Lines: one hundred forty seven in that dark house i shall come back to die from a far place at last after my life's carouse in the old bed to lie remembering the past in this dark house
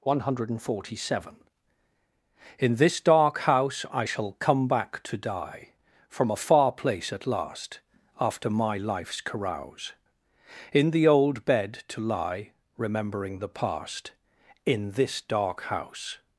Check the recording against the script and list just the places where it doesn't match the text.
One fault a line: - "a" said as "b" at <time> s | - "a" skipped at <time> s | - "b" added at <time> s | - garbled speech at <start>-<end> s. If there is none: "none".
- "that" said as "this" at 2.8 s